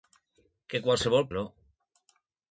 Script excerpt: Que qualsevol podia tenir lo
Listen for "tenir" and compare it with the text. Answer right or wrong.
wrong